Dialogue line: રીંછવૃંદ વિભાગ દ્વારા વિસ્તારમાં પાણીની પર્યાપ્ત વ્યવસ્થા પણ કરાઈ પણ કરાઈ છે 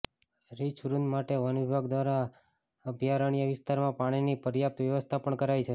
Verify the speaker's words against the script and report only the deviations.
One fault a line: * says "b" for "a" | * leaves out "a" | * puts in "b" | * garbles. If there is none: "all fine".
* puts in "માટે વન"
* puts in "અભયારણ્ય"
* leaves out "પણ કરાઈ"